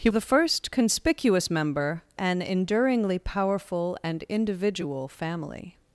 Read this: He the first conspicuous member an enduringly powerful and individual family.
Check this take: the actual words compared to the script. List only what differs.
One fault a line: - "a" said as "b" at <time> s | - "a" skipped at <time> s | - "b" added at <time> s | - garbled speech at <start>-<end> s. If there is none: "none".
none